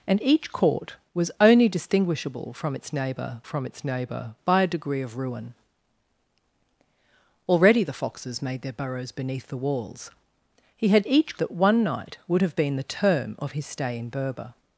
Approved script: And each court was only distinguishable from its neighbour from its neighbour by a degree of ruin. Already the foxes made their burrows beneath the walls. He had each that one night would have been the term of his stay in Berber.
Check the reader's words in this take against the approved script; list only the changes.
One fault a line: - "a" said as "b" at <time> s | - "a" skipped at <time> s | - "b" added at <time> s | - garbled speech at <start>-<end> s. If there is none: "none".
none